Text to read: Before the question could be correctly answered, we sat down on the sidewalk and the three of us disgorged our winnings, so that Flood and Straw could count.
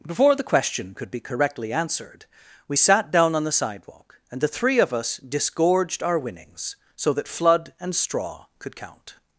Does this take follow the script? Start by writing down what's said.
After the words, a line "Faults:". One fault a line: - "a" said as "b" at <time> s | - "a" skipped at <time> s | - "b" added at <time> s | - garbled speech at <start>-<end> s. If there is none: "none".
Before the question could be correctly answered, we sat down on the sidewalk and the three of us disgorged our winnings, so that Flood and Straw could count.
Faults:
none